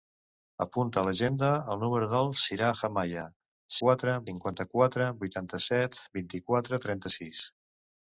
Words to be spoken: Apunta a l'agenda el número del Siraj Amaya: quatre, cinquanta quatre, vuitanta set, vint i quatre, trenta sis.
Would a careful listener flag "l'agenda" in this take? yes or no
no